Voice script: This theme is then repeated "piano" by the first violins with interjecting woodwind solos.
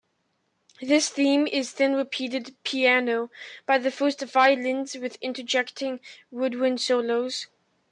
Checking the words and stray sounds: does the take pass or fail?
pass